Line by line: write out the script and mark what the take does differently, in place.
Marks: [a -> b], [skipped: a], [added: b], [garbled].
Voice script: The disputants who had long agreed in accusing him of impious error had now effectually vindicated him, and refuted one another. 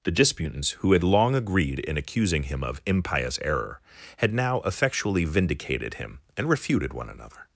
The disputants who had long agreed in accusing him of impious error had now effectually vindicated him, and refuted one another.